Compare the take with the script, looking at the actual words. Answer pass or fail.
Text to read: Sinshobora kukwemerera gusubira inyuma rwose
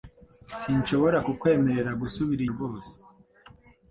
fail